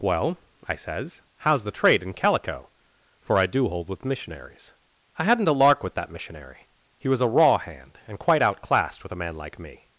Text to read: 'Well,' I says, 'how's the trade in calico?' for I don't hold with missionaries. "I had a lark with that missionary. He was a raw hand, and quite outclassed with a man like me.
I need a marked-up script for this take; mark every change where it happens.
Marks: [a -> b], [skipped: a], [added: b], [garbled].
'Well,' I says, 'how's the trade in calico?' for I [don't -> do] hold with missionaries. "I [had -> hadn't] a lark with that missionary. He was a raw hand, and quite outclassed with a man like me.